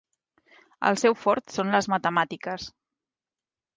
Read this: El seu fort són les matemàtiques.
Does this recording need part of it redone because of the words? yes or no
no